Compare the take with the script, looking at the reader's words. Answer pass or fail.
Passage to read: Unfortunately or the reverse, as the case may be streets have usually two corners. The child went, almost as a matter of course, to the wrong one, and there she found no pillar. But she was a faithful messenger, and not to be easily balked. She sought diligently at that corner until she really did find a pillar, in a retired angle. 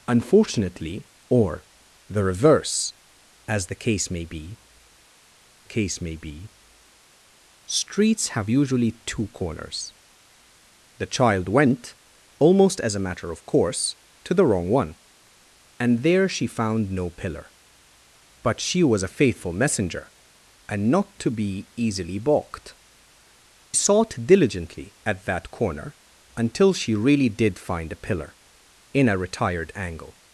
fail